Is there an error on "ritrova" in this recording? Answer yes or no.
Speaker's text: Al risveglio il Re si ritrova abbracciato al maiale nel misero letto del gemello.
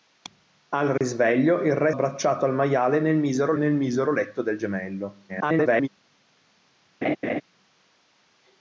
yes